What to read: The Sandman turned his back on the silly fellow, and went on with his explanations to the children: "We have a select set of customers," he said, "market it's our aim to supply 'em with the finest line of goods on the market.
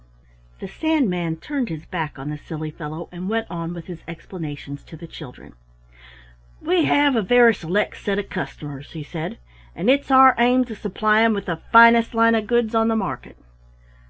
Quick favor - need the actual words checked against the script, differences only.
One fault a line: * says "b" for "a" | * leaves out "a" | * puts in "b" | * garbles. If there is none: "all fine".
* puts in "very"
* says "and" for "market"